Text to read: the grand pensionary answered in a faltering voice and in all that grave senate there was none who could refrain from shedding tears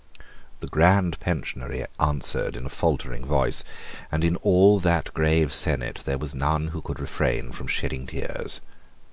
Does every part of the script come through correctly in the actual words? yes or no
yes